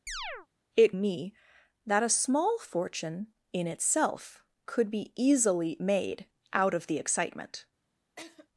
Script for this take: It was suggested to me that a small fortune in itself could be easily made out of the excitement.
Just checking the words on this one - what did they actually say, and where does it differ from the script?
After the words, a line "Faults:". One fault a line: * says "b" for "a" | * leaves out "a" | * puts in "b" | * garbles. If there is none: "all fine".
It me that a small fortune in itself could be easily made out of the excitement.
Faults:
* leaves out "was suggested to"